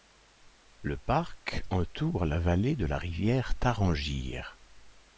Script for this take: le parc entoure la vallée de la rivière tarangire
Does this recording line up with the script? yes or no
yes